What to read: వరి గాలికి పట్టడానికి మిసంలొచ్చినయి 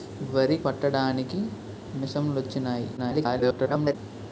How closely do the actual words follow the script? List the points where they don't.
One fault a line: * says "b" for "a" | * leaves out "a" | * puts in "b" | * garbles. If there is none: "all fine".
* leaves out "గాలికి"
* garbles